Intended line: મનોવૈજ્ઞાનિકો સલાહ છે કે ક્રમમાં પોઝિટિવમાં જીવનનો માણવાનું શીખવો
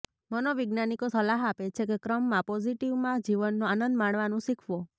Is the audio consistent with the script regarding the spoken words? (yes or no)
no